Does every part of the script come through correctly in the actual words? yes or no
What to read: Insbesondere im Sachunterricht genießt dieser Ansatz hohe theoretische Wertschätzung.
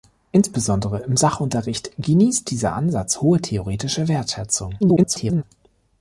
no